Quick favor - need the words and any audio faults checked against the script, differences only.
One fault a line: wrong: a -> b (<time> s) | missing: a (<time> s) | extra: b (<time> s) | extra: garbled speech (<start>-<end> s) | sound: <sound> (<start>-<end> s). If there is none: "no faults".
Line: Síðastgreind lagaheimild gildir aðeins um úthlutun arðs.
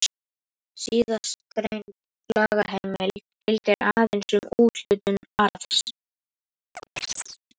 sound: chirp (6.8-7.4 s)